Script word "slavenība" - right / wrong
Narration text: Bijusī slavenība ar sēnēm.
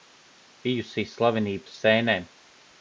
right